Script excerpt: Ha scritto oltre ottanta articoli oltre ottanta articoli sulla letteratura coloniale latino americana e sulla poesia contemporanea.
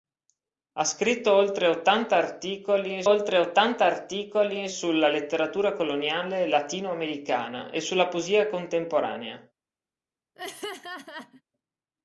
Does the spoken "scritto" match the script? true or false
true